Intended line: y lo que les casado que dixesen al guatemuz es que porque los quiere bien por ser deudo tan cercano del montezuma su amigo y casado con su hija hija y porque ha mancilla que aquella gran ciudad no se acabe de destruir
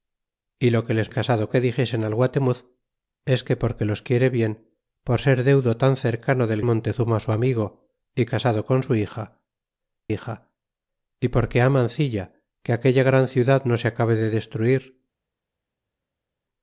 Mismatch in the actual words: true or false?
false